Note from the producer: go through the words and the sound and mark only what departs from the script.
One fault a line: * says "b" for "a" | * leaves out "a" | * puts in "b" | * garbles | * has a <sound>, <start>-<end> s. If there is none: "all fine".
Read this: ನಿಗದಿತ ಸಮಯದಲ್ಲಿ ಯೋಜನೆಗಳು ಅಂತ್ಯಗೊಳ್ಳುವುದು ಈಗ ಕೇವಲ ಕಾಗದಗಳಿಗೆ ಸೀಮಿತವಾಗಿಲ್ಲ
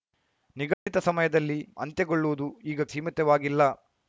* has a dropout, 0.7-0.9 s
* leaves out "ಯೋಜನೆಗಳು"
* leaves out "ಕೇವಲ ಕಾಗದಗಳಿಗೆ"